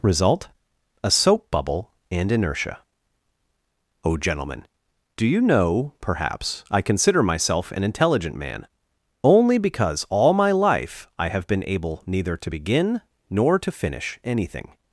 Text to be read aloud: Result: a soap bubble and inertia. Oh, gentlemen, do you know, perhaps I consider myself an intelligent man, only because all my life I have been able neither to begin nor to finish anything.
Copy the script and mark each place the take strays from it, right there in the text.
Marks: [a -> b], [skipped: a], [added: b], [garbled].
Result: a soap bubble and inertia. Oh, gentlemen, do you know, perhaps I consider myself an intelligent man, only because all my life I have been able neither to begin nor to finish anything.